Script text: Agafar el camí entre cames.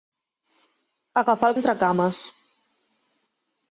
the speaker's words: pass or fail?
fail